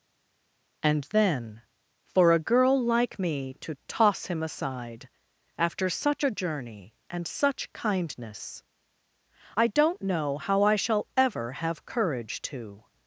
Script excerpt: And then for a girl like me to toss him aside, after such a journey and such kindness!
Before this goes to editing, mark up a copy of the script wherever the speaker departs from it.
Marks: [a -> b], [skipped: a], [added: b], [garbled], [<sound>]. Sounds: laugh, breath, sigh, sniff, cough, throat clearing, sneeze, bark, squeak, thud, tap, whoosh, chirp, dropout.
And then for a girl like me to toss him aside, after such a journey and such kindness! [added: I don't know how I shall ever have courage to]